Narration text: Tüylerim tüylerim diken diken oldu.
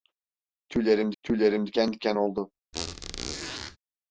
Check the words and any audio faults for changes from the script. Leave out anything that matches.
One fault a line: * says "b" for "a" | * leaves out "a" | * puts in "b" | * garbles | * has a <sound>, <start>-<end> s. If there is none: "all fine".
* has a squeak, 2.7-3.8 s